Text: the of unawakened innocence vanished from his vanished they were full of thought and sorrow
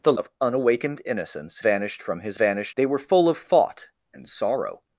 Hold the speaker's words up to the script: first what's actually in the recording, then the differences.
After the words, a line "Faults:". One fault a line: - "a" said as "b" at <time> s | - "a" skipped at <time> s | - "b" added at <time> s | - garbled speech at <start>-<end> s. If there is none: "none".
the of unawakened innocence vanished from his vanished they were full of thought and sorrow
Faults:
none